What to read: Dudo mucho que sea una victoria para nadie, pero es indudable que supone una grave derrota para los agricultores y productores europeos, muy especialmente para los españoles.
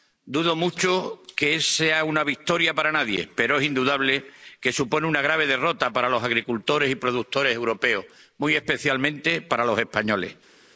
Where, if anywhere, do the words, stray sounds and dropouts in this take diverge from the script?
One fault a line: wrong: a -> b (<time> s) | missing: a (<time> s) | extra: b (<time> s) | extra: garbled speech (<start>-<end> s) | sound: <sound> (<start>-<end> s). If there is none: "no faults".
no faults